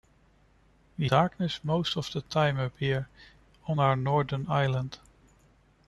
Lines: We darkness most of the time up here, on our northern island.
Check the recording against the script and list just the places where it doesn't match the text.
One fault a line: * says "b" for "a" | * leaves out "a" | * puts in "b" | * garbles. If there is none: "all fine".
all fine